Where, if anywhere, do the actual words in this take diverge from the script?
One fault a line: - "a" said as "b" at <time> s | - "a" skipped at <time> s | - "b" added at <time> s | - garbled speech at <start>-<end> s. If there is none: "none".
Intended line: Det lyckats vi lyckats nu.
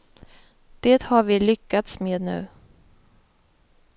- "lyckats" said as "har" at 1.0 s
- "med" added at 2.0 s